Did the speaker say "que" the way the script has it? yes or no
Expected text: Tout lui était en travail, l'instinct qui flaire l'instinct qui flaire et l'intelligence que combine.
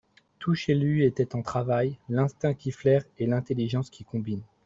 no